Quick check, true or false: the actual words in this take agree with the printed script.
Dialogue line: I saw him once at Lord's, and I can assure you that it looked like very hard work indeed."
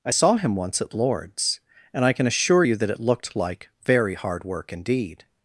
true